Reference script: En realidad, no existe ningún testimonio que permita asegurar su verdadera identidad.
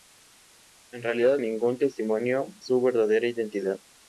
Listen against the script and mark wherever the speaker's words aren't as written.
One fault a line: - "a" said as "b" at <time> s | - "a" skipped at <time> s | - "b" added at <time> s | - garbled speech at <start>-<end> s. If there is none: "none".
- "no existe" skipped at 1.4 s
- "que permita asegurar" skipped at 2.6 s